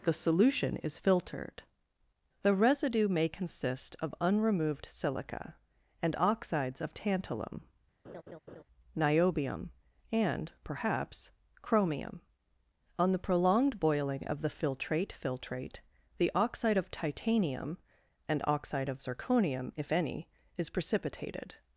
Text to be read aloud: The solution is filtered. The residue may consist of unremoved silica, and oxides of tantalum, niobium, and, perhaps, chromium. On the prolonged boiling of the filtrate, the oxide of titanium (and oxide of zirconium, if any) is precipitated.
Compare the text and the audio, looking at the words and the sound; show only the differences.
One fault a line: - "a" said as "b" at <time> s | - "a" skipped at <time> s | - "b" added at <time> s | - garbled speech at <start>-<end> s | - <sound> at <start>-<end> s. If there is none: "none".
- laugh at 8.0-8.6 s
- "filtrate" added at 15.1 s